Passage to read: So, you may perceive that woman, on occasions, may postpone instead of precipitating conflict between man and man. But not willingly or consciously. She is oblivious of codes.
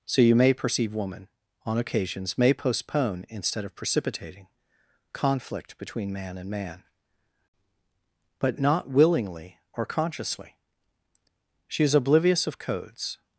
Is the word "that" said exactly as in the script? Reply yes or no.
no